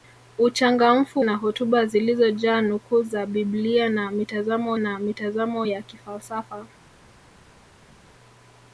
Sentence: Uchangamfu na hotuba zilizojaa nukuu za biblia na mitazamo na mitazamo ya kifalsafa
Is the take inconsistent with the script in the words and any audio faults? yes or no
no